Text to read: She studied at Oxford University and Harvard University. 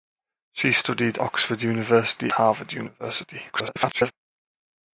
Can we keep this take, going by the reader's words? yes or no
no